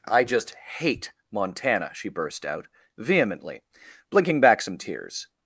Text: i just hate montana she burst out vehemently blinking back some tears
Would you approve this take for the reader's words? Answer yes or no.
yes